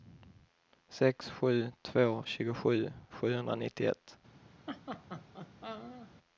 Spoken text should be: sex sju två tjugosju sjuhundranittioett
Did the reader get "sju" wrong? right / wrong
right